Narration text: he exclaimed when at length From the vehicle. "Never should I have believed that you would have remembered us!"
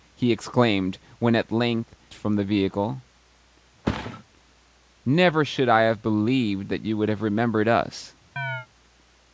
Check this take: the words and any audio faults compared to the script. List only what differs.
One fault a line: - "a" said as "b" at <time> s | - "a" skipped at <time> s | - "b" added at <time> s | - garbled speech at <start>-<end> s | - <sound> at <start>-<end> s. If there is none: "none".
- thud at 3.8-4.2 s
- chirp at 8.4-8.7 s